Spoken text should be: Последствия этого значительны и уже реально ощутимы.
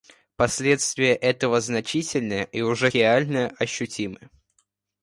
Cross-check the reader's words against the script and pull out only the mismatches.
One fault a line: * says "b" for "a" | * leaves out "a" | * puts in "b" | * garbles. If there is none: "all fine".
all fine